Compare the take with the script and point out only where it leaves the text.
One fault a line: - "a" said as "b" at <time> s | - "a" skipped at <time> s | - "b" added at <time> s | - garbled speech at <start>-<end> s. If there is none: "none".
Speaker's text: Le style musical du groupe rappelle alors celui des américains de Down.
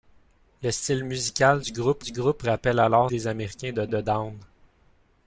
- "du groupe" added at 2.0 s
- "celui" skipped at 3.1 s
- "de" added at 3.9 s